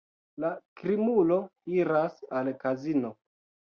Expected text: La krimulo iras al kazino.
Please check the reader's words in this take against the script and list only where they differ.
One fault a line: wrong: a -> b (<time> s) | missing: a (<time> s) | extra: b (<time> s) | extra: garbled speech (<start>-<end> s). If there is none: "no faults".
no faults